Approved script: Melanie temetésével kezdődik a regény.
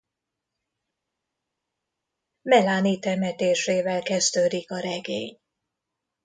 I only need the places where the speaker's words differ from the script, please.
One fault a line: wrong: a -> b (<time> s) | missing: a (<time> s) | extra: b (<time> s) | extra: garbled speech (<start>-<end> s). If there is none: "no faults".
no faults